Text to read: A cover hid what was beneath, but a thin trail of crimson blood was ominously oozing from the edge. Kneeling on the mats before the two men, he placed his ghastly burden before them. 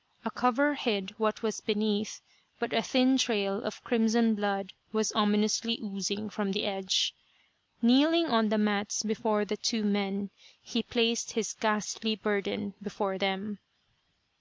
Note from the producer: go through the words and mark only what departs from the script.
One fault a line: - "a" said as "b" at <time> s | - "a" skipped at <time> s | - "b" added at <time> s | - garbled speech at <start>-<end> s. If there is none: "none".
none